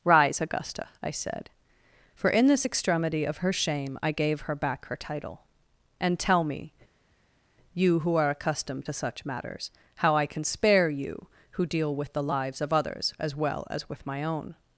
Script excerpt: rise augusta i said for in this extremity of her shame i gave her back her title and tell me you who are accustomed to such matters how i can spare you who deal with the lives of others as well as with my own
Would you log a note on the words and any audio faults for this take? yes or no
no